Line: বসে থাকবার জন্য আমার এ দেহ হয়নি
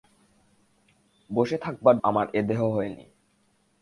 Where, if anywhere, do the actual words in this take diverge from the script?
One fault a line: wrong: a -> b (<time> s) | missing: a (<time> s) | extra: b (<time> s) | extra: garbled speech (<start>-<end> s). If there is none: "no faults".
missing: জন্য (1.9 s)